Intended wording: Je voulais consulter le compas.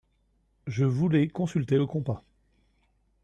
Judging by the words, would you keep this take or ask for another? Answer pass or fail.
pass